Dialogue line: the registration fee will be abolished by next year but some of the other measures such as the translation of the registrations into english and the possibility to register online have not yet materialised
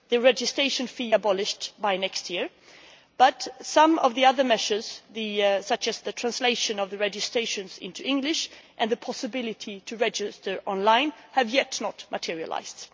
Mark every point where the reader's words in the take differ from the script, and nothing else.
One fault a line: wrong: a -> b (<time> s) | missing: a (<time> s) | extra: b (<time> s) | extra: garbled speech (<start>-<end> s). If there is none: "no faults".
missing: will be (1.1 s)